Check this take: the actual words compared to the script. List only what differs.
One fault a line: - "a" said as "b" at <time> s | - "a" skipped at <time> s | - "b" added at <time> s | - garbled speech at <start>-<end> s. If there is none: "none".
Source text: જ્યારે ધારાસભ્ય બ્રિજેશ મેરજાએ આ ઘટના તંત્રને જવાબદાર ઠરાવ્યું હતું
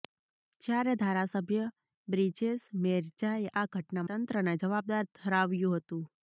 none